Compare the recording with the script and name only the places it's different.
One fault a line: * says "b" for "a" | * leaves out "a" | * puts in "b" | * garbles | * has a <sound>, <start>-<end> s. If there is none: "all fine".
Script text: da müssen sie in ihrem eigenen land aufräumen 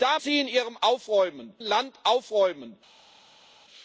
* leaves out "müssen"
* says "aufräumen" for "eigenen"